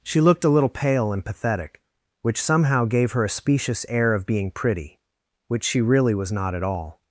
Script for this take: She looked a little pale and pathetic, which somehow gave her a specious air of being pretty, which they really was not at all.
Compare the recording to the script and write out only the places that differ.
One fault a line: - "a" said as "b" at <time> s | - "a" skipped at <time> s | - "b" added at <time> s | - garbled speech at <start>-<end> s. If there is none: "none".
- "they" said as "she" at 5.6 s